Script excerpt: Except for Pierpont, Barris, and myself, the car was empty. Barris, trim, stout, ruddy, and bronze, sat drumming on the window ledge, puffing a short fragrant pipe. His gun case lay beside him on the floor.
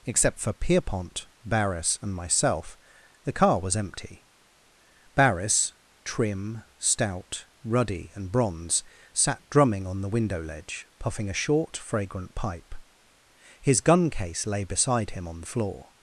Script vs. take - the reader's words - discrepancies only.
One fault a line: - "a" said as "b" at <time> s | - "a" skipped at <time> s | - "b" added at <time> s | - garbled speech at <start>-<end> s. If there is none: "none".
none